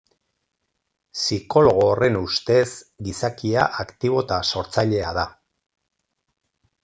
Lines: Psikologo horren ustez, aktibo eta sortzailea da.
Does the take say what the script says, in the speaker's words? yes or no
no